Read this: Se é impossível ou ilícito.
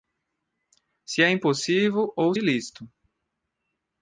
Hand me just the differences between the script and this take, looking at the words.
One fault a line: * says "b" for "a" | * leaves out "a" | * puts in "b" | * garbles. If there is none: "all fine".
all fine